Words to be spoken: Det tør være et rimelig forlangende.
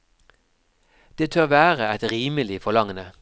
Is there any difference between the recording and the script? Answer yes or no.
no